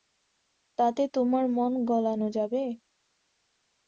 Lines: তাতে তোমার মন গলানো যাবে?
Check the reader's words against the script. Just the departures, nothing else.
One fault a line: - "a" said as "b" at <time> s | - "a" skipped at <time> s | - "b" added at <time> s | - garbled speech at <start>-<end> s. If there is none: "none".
none